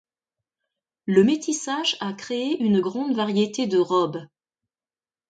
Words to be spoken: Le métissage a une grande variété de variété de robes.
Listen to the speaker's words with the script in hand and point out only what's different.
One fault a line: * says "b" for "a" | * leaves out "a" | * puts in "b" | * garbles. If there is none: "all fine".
* puts in "créé"
* leaves out "variété de"